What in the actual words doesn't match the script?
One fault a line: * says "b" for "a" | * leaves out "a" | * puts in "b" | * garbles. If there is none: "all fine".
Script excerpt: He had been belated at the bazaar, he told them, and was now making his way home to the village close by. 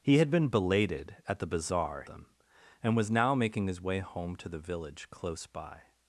* leaves out "he told"